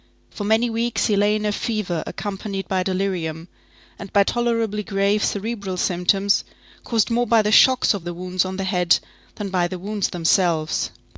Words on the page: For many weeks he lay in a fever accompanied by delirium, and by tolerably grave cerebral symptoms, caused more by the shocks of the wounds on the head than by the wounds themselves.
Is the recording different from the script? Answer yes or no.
no